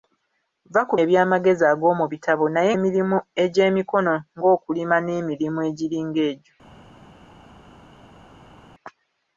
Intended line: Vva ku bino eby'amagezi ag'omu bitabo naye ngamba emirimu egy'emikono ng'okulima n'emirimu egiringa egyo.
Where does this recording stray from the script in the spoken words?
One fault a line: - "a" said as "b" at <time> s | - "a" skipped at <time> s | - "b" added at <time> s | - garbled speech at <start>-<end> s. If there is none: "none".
- "bino" skipped at 0.9 s
- "ngamba" skipped at 2.7 s